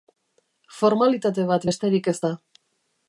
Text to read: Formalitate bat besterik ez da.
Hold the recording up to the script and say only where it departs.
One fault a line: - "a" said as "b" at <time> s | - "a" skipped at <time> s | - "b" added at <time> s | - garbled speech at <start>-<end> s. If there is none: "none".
none